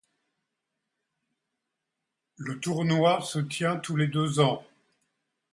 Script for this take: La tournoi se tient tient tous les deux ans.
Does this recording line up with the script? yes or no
no